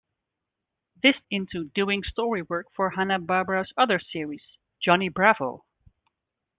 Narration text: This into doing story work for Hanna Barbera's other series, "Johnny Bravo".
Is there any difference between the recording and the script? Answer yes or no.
no